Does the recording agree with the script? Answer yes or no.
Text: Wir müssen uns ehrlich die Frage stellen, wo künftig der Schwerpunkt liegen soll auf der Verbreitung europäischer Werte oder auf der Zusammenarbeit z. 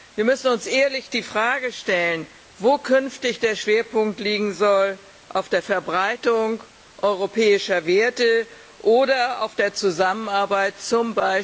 yes